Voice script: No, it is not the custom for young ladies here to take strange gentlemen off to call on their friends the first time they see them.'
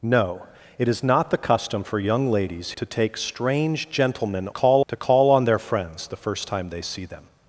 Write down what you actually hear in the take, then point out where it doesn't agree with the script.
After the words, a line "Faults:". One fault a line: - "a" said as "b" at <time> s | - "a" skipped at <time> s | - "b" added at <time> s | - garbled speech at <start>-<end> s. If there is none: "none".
No, it is not the custom for young ladies to take strange gentlemen call to call on their friends the first time they see them.'
Faults:
- "here" skipped at 2.7 s
- "off" said as "call" at 4.5 s